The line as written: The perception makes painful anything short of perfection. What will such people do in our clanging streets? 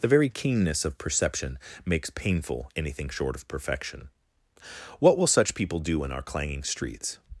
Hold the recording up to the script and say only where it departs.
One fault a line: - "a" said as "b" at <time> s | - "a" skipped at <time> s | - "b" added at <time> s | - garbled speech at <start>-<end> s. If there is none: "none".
- "very keenness of" added at 0.1 s